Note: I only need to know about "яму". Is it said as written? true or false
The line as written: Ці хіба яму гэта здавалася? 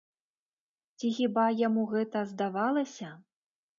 true